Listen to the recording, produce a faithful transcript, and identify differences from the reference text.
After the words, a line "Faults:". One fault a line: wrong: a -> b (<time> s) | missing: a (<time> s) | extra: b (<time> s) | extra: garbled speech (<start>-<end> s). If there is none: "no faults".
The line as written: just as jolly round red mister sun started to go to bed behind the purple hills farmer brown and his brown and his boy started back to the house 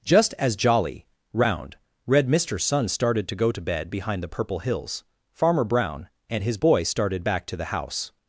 just as jolly round red mister sun started to go to bed behind the purple hills farmer brown and his boy started back to the house
Faults:
missing: brown and his (6.6 s)